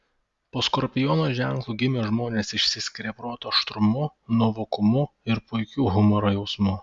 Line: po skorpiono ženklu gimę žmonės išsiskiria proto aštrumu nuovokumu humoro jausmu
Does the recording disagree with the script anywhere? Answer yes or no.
yes